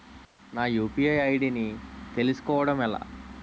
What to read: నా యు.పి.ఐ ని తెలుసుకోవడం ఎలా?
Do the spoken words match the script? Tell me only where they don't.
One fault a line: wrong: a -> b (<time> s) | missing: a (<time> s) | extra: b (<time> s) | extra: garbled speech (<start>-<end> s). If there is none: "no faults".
extra: ఐ.డి (1.2 s)